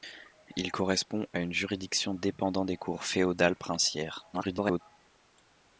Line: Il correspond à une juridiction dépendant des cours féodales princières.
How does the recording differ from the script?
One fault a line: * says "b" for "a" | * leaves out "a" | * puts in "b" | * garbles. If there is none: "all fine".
* garbles